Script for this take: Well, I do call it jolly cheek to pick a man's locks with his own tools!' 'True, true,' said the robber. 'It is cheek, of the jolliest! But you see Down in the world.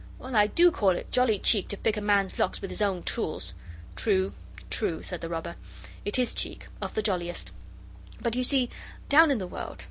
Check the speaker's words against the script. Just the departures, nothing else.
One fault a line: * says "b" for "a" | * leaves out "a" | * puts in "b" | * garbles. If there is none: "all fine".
all fine